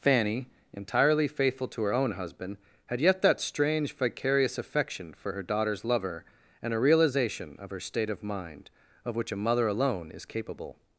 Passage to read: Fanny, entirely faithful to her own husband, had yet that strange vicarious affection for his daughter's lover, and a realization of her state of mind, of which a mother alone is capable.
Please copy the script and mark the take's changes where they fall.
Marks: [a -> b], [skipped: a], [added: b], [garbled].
Fanny, entirely faithful to her own husband, had yet that strange vicarious affection for [his -> her] daughter's lover, and a realization of her state of mind, of which a mother alone is capable.